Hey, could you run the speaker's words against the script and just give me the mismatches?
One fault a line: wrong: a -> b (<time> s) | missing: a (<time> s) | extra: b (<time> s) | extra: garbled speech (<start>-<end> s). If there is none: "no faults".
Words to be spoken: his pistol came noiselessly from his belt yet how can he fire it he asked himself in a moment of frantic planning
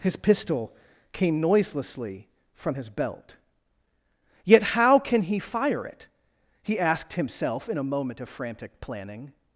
no faults